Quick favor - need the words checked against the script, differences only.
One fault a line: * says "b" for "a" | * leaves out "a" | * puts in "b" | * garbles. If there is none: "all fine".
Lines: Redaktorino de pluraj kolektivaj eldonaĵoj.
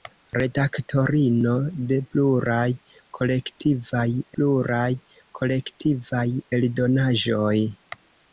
* puts in "pluraj kolektivaj"